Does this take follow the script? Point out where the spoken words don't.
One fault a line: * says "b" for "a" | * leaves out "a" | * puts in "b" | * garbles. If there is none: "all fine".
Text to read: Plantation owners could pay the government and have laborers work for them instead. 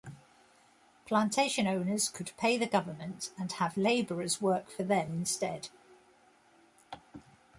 all fine